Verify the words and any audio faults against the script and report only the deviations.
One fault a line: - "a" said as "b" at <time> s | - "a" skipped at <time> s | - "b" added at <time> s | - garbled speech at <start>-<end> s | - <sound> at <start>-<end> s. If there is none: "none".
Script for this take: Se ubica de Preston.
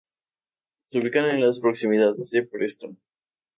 - "en las proximidades" added at 1.3 s